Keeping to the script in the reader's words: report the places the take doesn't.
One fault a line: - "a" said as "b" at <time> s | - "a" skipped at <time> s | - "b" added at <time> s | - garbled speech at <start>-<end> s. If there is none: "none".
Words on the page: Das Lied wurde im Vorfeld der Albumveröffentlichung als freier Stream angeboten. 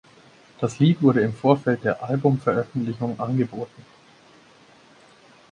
- "als freier Stream" skipped at 3.2 s